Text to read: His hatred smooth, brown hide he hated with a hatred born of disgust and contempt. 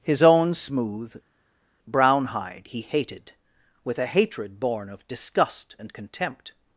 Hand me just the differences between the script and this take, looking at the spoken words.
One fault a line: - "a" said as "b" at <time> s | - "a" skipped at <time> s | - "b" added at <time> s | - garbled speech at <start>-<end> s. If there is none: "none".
- "hatred" said as "own" at 0.2 s